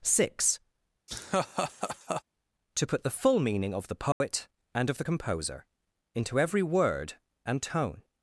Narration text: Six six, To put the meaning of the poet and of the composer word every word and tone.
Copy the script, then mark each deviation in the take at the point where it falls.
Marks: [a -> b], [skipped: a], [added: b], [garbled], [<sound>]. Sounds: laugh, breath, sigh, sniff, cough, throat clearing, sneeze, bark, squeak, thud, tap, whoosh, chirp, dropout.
Six [skipped: six,] [laugh] To put the [added: full] meaning of the poet [dropout] and of the composer [word -> into] every word and tone.